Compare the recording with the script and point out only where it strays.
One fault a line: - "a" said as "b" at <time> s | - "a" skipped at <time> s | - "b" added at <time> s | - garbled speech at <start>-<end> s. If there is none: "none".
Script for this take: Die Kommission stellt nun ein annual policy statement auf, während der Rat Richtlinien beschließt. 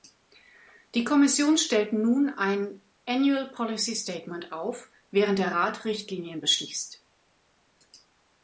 none